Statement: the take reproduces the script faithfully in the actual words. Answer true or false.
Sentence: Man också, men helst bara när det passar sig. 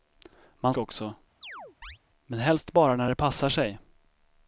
true